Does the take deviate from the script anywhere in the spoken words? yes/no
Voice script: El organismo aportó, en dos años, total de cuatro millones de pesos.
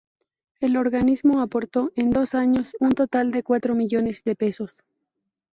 yes